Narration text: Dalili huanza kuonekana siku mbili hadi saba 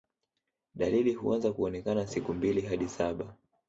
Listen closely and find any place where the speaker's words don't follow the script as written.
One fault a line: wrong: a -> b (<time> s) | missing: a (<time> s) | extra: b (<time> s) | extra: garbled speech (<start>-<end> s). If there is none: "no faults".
no faults